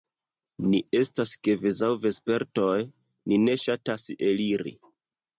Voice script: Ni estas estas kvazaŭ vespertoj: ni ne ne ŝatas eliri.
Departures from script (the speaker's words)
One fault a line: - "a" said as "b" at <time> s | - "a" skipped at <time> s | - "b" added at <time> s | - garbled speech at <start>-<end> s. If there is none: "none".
- "estas" skipped at 1.3 s
- "ne" skipped at 3.6 s